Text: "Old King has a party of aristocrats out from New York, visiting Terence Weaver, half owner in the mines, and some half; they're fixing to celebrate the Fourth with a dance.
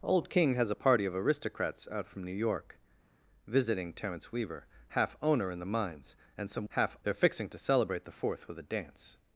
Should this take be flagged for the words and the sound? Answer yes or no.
no